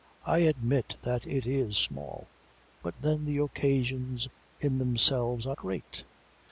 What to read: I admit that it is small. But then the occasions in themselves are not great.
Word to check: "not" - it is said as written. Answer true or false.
false